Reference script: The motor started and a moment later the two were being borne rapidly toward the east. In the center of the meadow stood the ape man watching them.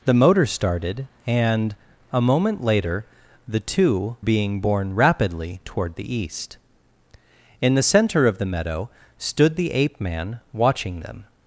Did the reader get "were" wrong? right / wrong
wrong